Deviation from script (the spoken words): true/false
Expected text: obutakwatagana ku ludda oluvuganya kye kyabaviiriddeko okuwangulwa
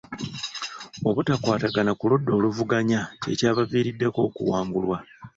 false